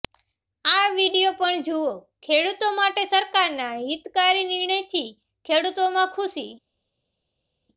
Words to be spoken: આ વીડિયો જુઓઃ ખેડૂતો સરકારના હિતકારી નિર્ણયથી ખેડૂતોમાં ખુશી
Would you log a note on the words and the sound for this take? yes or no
yes